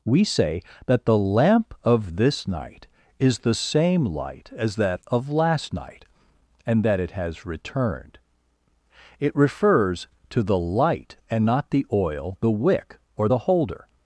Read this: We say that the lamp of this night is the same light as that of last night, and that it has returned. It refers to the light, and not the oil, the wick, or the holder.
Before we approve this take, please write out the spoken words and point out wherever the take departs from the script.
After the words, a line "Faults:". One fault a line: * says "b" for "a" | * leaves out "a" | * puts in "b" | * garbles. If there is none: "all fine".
We say that the lamp of this night is the same light as that of last night, and that it has returned. It refers to the light, and not the oil, the wick, or the holder.
Faults:
all fine